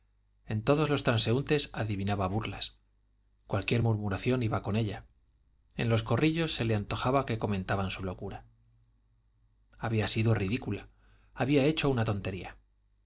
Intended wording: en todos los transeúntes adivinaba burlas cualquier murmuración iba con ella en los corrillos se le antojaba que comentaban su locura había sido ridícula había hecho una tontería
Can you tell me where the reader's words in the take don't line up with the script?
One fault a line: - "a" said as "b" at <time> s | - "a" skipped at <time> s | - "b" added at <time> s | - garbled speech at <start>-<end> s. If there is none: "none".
none